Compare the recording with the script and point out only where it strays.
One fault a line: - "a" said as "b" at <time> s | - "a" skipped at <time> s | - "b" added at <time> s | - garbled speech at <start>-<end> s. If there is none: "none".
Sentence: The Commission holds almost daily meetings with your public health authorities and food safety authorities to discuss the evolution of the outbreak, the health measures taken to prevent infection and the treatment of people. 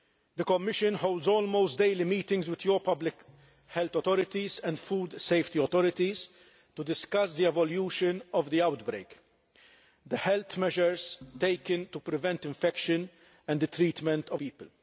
none